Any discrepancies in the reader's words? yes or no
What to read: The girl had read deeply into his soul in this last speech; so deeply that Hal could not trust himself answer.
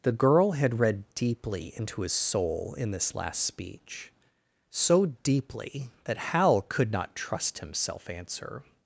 no